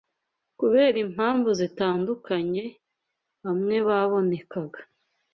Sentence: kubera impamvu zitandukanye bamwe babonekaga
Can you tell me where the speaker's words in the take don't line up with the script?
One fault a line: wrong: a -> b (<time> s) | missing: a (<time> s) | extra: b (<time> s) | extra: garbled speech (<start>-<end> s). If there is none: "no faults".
no faults